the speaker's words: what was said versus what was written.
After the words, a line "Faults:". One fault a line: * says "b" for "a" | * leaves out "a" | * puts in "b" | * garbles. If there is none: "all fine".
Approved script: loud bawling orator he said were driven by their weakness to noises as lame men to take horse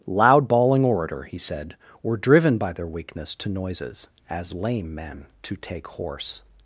loud bawling orator he said were driven by their weakness to noises as lame men to take horse
Faults:
all fine